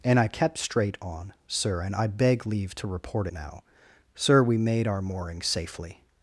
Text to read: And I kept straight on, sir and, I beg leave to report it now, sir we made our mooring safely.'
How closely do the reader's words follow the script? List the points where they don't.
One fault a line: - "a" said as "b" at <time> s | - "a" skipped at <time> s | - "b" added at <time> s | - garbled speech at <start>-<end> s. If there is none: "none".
- "it" skipped at 3.3 s